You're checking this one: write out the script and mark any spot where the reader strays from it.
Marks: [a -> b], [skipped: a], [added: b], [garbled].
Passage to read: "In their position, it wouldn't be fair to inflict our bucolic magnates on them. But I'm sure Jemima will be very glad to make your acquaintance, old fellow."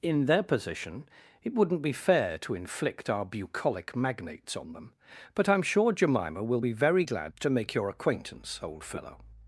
"In their position, it wouldn't be fair to inflict our bucolic magnates on them. But I'm sure Jemima will be very glad to make your acquaintance, old fellow."